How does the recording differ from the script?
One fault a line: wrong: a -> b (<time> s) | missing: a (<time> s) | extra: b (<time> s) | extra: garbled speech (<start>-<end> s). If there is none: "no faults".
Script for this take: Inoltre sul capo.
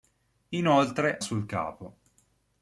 no faults